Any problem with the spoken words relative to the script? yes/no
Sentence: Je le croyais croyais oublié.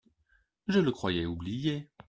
yes